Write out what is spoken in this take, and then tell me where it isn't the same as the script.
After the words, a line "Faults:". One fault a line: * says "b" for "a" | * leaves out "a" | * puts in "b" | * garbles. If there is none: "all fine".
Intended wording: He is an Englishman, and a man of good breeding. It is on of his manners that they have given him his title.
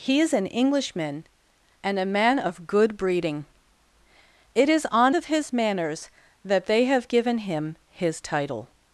He is an Englishman, and a man of good breeding. It is on of his manners that they have given him his title.
Faults:
all fine